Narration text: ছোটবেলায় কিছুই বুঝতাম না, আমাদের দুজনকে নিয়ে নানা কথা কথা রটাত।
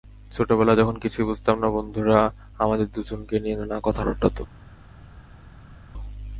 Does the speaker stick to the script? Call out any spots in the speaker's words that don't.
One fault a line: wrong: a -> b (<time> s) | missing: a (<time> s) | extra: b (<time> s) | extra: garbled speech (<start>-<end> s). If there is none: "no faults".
extra: যখন (0.8 s)
extra: বন্ধুরা (1.7 s)
missing: কথা (4.0 s)